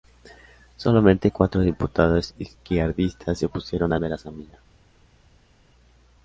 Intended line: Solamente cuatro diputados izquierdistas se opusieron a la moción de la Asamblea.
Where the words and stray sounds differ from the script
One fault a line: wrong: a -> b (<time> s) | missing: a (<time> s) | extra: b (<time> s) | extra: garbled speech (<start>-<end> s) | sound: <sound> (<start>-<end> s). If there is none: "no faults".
missing: la moción (4.0 s)